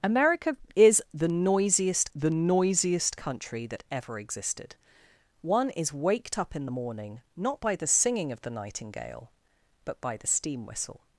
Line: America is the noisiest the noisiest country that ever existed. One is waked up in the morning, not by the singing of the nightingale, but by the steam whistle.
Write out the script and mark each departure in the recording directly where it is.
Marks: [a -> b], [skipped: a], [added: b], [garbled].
America is the noisiest the noisiest country that ever existed. One is waked up in the morning, not by the singing of the nightingale, but by the steam whistle.